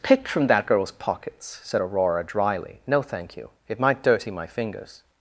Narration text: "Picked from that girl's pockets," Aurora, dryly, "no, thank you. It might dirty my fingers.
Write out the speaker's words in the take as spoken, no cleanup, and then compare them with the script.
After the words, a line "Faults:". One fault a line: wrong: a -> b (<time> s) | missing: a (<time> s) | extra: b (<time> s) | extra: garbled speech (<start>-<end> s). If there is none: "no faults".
"Picked from that girl's pockets," said Aurora, dryly, "no, thank you. It might dirty my fingers.
Faults:
extra: said (1.6 s)